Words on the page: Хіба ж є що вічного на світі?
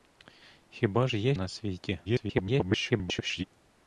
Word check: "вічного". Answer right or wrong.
wrong